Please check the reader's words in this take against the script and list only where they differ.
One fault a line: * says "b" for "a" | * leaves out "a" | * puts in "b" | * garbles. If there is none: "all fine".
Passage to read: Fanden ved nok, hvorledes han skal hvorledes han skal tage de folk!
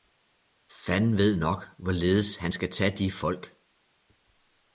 * leaves out "hvorledes han skal"